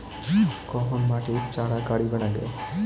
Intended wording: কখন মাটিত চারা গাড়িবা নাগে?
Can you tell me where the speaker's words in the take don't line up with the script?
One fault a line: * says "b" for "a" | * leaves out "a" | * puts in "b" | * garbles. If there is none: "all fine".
all fine